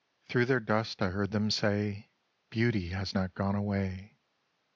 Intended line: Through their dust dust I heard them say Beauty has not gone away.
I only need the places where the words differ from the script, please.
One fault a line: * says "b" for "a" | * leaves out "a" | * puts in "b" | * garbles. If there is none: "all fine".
* leaves out "dust"